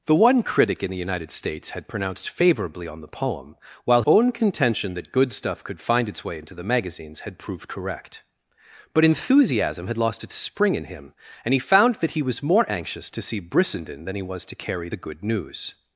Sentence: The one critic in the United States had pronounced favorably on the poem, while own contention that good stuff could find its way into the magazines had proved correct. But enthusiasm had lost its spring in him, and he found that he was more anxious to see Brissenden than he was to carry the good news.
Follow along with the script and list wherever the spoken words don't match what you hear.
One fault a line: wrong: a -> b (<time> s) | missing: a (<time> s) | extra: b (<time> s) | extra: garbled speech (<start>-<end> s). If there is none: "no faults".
no faults